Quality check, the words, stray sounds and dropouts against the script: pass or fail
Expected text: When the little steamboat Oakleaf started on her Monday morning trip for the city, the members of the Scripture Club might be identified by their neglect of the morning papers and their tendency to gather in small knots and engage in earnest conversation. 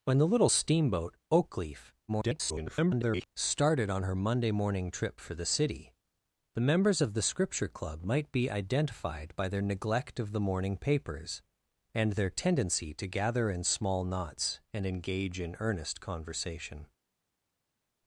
fail